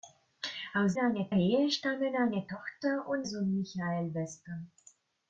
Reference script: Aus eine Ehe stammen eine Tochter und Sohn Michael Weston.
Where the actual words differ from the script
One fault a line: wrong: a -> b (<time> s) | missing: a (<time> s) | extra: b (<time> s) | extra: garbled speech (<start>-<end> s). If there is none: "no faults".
no faults